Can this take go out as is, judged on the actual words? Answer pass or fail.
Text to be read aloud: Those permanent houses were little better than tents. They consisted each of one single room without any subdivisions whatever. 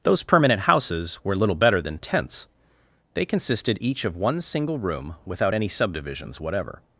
pass